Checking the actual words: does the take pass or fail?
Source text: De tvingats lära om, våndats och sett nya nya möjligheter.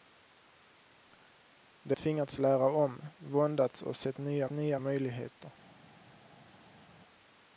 pass